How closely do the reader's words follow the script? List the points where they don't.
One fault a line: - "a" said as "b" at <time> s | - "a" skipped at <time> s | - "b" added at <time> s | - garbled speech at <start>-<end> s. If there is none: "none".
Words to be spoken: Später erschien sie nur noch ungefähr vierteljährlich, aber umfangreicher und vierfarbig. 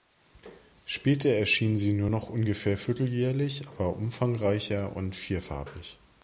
none